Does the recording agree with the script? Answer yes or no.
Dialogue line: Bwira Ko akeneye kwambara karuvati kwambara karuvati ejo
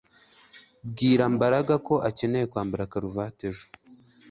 no